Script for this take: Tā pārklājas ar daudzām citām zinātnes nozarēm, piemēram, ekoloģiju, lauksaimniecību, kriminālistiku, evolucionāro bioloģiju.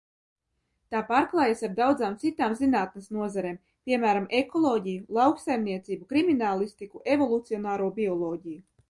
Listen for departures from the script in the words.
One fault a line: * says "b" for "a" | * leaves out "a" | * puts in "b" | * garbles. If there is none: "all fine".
all fine